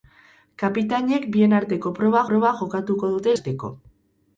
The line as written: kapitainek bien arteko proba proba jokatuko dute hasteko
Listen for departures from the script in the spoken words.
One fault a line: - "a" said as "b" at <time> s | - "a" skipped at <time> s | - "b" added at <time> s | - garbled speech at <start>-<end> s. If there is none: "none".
none